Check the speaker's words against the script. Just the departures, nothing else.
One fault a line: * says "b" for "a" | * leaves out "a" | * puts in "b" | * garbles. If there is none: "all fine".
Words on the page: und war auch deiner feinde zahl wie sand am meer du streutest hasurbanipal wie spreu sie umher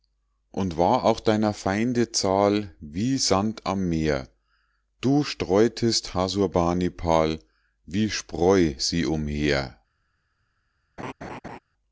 all fine